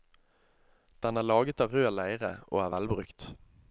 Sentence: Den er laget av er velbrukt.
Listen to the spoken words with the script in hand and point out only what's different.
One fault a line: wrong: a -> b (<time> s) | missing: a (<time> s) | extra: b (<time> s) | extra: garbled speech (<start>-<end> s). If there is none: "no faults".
extra: rød leire og (1.8 s)